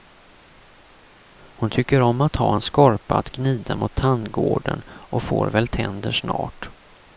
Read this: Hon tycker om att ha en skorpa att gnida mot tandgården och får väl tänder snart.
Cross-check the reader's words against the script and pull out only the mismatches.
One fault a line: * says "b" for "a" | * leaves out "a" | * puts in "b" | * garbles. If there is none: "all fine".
all fine